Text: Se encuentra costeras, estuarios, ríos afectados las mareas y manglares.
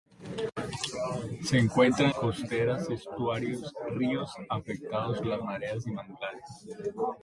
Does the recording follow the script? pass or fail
pass